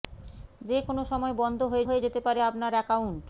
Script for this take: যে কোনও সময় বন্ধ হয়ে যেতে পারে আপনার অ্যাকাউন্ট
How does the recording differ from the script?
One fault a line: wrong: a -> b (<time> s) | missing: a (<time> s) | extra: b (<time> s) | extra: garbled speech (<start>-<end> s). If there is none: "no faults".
extra: হয়ে (1.9 s)